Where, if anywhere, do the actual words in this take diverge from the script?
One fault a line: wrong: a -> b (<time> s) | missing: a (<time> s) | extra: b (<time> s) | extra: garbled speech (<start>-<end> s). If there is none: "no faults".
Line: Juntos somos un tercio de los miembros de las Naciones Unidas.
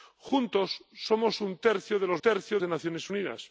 wrong: miembros -> tercio (2.2 s)